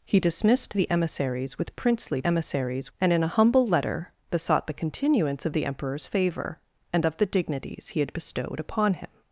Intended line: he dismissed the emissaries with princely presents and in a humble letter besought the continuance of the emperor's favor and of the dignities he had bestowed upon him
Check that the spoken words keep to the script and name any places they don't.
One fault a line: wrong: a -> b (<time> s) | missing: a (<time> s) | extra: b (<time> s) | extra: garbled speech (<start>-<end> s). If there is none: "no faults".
wrong: presents -> emissaries (2.3 s)